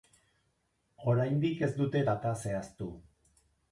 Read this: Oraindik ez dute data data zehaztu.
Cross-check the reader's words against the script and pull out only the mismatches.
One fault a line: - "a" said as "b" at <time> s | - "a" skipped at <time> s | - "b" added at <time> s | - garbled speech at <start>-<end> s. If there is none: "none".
- "data" skipped at 2.4 s